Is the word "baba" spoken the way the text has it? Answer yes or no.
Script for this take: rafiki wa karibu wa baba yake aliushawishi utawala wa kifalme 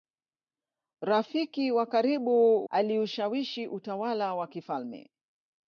no